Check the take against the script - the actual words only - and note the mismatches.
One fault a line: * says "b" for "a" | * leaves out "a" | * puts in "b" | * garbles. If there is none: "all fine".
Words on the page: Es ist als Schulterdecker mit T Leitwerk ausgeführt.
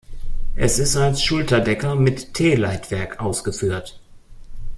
all fine